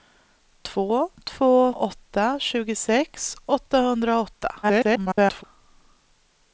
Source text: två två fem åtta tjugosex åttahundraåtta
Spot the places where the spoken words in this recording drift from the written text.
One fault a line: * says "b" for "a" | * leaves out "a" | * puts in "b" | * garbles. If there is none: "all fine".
* leaves out "fem"
* garbles